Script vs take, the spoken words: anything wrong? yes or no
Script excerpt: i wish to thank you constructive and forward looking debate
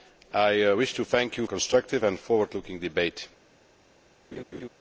no